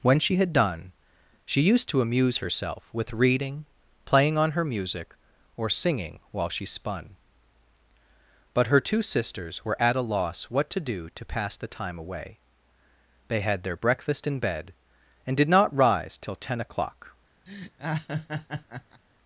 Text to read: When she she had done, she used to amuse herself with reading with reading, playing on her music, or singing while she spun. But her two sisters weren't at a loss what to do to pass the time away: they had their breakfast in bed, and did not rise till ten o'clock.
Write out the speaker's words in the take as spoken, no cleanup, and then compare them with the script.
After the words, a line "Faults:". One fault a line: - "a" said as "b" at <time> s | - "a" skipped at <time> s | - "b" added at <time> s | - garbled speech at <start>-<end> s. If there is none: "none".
When she had done, she used to amuse herself with reading, playing on her music, or singing while she spun. But her two sisters were at a loss what to do to pass the time away: they had their breakfast in bed, and did not rise till ten o'clock.
Faults:
- "she" skipped at 0.4 s
- "with reading" skipped at 3.6 s
- "weren't" said as "were" at 9.6 s